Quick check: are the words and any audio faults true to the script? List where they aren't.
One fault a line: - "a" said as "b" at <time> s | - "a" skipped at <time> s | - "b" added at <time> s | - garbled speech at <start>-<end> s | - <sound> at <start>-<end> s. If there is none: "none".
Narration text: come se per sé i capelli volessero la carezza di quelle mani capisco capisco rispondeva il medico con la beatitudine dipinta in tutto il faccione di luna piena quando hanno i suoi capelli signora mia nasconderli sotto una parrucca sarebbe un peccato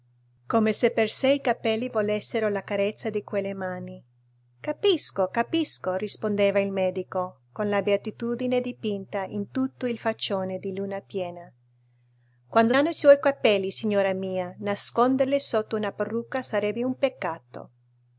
none